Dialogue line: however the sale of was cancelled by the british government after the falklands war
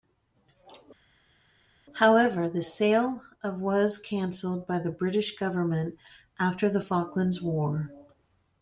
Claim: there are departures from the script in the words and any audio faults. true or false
false